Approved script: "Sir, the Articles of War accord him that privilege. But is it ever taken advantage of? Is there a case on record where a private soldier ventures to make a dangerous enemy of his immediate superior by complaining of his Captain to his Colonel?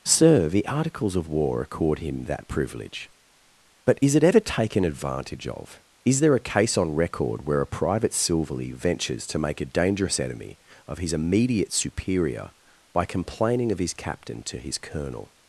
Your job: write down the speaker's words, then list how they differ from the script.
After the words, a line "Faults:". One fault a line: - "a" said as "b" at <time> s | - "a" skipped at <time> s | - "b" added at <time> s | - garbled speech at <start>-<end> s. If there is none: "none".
"Sir, the Articles of War accord him that privilege. But is it ever taken advantage of? Is there a case on record where a private silverly ventures to make a dangerous enemy of his immediate superior by complaining of his Captain to his Colonel?
Faults:
- "soldier" said as "silverly" at 8.1 s